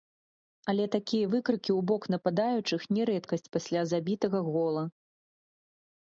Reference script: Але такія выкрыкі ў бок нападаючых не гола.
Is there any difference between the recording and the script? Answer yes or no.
yes